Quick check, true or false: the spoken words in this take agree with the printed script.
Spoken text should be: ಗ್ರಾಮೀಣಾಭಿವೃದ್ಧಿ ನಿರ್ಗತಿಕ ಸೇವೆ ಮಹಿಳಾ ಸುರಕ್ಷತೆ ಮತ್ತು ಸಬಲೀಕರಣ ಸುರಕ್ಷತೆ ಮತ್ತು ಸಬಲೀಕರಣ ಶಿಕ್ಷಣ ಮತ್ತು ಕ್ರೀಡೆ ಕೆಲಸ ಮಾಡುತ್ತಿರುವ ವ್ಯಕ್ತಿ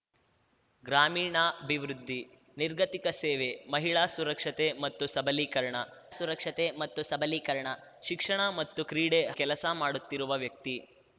true